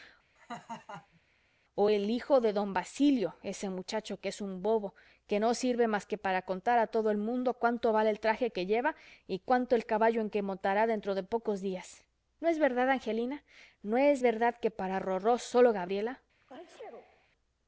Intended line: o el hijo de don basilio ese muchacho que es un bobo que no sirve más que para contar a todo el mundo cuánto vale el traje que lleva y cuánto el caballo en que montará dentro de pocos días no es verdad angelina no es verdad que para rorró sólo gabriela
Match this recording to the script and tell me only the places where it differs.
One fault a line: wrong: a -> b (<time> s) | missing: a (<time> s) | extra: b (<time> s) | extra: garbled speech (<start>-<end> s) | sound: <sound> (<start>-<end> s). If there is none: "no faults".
sound: laugh (0.4-1.2 s)
sound: sneeze (16.4-17.3 s)